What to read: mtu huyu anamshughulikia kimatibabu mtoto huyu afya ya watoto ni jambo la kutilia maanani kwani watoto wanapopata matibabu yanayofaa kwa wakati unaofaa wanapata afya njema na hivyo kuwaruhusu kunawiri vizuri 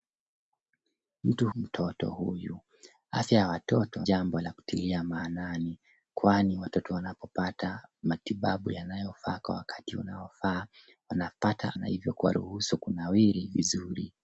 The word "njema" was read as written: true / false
false